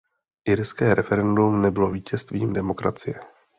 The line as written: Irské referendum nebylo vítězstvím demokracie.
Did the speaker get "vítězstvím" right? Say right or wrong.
right